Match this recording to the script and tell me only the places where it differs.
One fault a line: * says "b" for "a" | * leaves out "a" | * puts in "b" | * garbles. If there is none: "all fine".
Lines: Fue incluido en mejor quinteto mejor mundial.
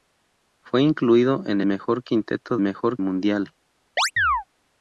all fine